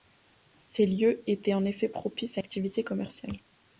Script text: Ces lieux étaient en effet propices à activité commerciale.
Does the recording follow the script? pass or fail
pass